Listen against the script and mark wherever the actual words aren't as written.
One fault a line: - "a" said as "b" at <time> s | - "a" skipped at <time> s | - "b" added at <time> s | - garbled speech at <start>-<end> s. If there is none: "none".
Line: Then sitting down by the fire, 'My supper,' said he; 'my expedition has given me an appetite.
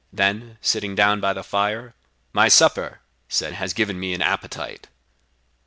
- "he my expedition" skipped at 3.5 s